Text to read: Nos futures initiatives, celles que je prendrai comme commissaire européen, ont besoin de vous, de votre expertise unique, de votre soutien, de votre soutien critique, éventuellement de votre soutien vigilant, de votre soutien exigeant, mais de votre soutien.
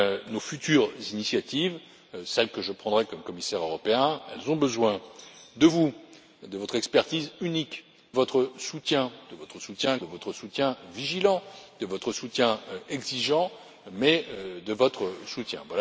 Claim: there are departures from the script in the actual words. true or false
true